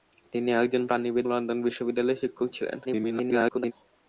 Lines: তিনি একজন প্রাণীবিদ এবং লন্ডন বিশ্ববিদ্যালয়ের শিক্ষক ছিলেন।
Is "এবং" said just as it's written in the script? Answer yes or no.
no